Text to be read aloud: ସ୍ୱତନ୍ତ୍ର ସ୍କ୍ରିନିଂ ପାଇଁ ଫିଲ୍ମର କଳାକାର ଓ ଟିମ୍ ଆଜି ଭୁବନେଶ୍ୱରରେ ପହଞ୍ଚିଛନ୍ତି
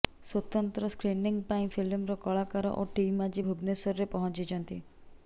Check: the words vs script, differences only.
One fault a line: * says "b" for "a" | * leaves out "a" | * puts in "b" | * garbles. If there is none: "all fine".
all fine